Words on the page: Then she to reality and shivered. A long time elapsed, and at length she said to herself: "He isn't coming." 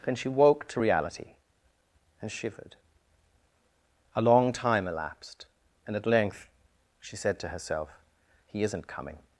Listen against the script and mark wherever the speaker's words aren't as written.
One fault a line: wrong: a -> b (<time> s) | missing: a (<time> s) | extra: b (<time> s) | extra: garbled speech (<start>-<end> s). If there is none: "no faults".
extra: woke (0.3 s)